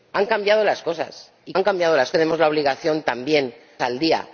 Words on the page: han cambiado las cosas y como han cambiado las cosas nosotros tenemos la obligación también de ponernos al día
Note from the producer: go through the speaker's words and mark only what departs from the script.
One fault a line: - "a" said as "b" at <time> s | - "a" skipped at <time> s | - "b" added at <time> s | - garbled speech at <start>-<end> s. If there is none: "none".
- "como" skipped at 1.5 s
- "cosas nosotros" skipped at 2.1 s
- "de ponernos" skipped at 3.6 s